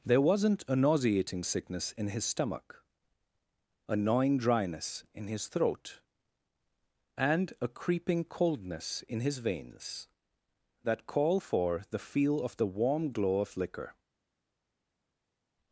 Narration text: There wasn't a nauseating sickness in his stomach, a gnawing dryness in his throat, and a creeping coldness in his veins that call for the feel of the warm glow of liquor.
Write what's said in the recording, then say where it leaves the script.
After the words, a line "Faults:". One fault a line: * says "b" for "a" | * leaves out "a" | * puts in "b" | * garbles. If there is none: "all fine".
There wasn't a nauseating sickness in his stomach, a gnawing dryness in his throat, and a creeping coldness in his veins that call for the feel of the warm glow of liquor.
Faults:
all fine